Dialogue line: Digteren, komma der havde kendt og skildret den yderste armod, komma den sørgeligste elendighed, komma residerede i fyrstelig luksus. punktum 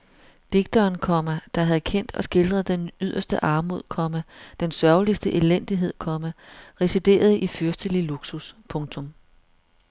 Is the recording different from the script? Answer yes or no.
no